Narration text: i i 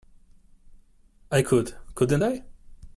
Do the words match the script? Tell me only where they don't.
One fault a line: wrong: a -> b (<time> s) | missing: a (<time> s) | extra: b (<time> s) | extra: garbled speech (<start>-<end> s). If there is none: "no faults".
extra: could couldn't (1.4 s)